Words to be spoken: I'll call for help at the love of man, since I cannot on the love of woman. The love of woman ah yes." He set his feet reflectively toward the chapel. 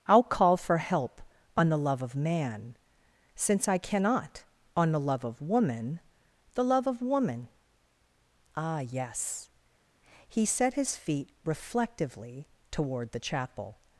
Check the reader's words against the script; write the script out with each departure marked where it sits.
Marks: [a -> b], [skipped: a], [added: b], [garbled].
I'll call for help [at -> on] the love of man, since I cannot on the love of woman. The love of woman ah yes." He set his feet reflectively toward the chapel.